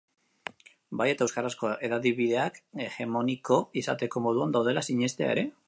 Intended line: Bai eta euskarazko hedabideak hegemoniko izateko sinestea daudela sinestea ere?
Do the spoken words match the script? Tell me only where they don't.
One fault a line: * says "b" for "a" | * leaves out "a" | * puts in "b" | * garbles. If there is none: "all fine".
* says "moduan" for "sinestea"